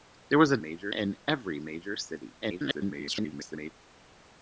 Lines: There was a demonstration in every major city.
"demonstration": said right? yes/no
no